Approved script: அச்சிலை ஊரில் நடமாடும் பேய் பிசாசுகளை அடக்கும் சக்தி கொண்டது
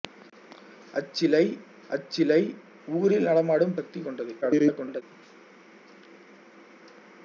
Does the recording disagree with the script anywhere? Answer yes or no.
yes